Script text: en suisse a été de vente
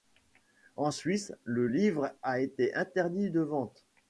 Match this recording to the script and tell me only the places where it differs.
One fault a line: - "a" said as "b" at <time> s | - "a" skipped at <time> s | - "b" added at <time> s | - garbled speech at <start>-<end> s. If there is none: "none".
- "le livre" added at 1.4 s
- "interdit" added at 2.7 s